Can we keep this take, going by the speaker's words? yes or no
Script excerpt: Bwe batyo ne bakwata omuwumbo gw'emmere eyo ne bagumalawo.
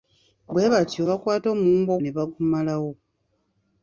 no